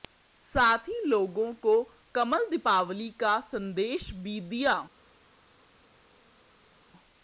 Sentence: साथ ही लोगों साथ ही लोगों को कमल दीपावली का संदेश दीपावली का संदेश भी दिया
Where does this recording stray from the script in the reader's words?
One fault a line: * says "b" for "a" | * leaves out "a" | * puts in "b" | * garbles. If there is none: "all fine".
* leaves out "साथ ही लोगों"
* leaves out "दीपावली का संदेश"